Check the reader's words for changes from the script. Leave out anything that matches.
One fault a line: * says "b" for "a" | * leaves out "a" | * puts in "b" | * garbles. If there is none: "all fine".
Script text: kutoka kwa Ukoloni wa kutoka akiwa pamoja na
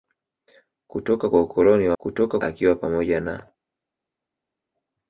all fine